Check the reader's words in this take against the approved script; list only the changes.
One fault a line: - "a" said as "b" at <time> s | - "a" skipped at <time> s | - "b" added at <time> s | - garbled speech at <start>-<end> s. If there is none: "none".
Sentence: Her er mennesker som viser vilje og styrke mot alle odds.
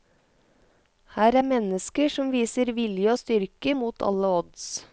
none